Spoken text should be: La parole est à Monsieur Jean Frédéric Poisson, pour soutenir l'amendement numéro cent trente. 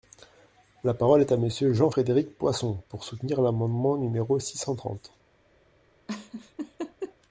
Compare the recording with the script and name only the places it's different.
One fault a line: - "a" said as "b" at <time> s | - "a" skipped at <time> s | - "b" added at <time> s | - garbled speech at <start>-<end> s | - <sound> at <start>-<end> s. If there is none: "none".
- "six" added at 4.4 s
- laugh at 6.1-7.2 s